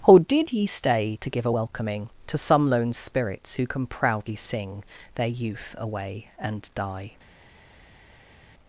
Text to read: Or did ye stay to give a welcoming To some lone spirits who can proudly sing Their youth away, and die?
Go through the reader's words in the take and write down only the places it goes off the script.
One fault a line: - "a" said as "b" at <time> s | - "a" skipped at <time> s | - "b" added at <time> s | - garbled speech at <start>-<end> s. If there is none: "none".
none